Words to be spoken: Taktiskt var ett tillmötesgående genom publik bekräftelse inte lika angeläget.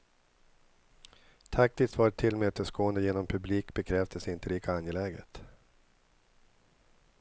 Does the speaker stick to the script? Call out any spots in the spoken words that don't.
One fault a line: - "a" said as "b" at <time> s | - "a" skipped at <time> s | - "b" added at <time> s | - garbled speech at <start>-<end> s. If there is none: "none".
none